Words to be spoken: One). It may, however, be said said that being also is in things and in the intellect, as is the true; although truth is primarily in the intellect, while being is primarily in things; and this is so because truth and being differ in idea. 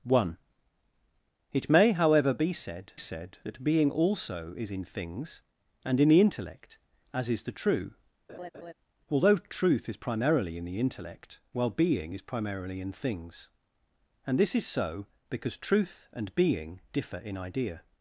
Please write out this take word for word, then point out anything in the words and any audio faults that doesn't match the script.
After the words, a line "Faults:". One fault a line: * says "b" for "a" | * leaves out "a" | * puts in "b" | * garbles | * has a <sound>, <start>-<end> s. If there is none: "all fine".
One). It may, however, be said said that being also is in things and in the intellect, as is the true; although truth is primarily in the intellect, while being is primarily in things; and this is so because truth and being differ in idea.
Faults:
* has a laugh, 8.3-8.7 s